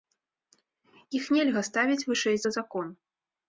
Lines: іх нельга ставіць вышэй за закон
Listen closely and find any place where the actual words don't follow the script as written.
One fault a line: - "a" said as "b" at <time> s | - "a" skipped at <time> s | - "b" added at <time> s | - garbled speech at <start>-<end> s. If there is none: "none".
none